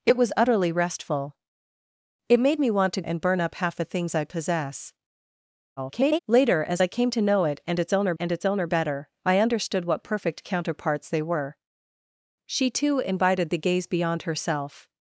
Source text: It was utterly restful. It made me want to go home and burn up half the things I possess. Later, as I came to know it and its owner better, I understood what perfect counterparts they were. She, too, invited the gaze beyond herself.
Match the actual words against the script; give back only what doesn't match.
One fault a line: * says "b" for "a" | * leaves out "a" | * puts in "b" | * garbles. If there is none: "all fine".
* leaves out "go home"
* garbles
* puts in "and its owner"